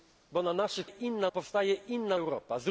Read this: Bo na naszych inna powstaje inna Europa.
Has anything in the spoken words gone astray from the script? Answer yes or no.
no